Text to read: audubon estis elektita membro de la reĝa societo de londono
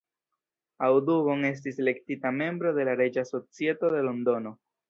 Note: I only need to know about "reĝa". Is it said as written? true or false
true